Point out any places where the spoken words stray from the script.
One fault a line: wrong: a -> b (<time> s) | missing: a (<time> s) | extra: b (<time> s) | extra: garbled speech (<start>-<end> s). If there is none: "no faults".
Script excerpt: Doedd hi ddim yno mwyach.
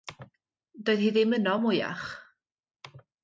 no faults